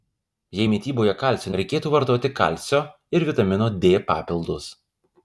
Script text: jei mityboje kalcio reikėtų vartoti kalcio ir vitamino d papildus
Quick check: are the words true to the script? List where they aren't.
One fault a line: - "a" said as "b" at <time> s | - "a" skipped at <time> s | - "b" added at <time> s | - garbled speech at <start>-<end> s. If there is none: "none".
none